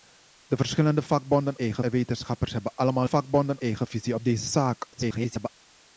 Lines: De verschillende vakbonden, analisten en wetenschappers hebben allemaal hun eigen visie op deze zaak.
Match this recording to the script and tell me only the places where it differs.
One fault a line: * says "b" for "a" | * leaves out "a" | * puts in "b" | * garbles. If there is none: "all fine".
* says "eigen" for "analisten"
* says "vakbonden" for "hun"
* garbles